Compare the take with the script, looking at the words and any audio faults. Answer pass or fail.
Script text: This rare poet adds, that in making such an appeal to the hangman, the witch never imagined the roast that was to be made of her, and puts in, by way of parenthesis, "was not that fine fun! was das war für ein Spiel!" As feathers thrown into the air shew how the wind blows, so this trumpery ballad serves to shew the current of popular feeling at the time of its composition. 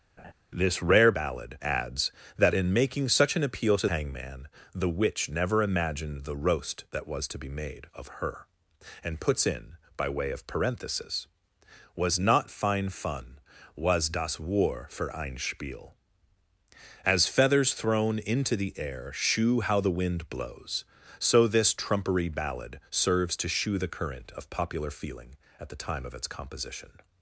fail